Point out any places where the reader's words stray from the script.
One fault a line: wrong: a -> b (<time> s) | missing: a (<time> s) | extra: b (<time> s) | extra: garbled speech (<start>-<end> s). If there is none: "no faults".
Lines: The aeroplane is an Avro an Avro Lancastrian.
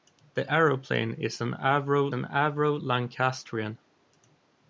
no faults